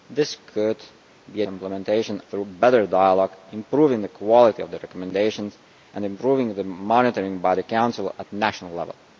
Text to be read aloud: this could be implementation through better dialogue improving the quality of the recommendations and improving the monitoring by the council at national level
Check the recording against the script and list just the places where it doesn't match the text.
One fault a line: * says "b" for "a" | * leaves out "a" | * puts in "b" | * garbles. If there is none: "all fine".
all fine